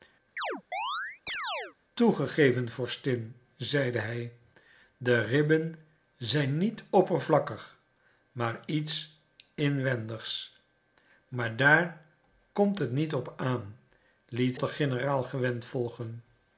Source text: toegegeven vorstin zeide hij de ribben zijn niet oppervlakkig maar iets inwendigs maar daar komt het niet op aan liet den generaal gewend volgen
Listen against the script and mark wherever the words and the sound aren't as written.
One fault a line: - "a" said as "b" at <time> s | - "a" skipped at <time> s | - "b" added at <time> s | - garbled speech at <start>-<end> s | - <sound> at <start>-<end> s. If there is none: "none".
- chirp at 0.4-1.8 s